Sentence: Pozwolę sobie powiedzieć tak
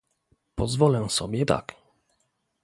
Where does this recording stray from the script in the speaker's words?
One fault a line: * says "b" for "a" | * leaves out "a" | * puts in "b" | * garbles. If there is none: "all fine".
* leaves out "powiedzieć"